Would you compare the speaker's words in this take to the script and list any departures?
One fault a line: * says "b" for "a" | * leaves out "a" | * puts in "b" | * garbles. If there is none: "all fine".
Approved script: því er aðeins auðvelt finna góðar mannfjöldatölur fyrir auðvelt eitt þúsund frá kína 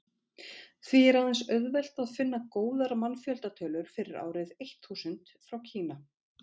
* puts in "að"
* says "árið" for "auðvelt"